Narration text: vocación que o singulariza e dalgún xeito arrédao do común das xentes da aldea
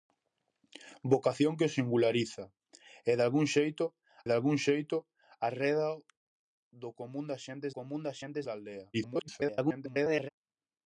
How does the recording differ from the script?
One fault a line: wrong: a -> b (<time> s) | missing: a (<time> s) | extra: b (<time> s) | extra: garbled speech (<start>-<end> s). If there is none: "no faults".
extra: dalgún xeito (4.3 s)
extra: común das xentes (7.8 s)
extra: garbled speech (8.9-10.3 s)